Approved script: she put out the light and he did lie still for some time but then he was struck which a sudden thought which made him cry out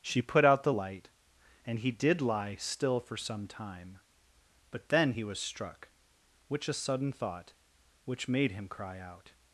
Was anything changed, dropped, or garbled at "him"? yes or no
no